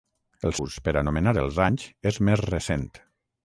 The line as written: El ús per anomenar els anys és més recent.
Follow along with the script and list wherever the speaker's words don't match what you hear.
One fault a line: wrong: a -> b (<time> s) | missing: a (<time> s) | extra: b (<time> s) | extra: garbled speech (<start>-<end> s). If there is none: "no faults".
no faults